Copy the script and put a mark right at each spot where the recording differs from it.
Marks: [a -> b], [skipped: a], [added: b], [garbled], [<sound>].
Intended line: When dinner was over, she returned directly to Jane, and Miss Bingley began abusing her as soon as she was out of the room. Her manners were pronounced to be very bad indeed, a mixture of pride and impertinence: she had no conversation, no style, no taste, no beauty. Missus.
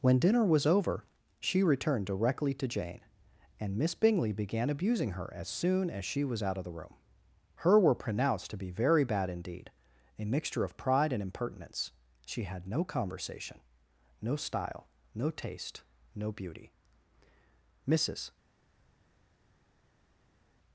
When dinner was over, she returned directly to Jane, and Miss Bingley began abusing her as soon as she was out of the room. Her [skipped: manners] were pronounced to be very bad indeed, a mixture of pride and impertinence: she had no conversation, no style, no taste, no beauty. Missus.